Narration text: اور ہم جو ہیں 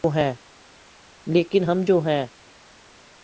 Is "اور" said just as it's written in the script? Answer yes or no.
no